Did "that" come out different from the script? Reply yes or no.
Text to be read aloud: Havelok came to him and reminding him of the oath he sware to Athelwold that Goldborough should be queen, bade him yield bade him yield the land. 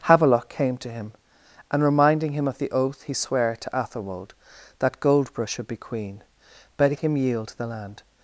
no